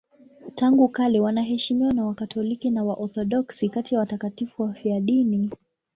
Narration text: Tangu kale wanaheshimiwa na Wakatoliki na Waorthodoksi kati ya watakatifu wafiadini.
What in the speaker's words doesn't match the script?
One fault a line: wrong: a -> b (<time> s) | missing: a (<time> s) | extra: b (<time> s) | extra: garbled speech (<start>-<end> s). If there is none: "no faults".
no faults